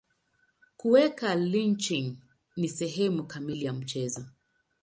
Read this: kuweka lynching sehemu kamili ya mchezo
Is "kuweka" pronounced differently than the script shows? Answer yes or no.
no